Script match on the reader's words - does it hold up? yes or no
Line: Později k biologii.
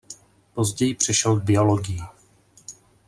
no